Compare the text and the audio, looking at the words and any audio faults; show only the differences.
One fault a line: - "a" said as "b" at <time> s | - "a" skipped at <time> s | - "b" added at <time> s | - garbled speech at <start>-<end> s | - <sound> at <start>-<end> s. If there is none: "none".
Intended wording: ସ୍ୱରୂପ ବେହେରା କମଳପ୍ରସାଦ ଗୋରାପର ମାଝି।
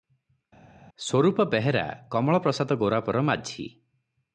none